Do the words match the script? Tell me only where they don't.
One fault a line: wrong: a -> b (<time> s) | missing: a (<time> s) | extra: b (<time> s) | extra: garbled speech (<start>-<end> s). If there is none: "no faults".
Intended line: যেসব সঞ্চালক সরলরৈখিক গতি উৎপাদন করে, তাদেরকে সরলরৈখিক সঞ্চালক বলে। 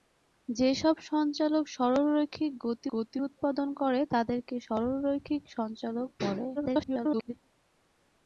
extra: গতি (2.9 s)
extra: garbled speech (6.6-7.3 s)